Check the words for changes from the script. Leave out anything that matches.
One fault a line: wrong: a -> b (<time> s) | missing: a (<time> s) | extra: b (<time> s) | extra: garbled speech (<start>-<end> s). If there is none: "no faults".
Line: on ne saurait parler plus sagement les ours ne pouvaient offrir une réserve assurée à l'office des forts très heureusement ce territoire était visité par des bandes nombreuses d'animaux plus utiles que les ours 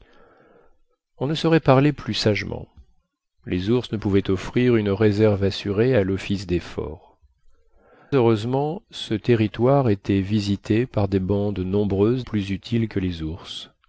missing: très (7.2 s)
missing: d'animaux (12.2 s)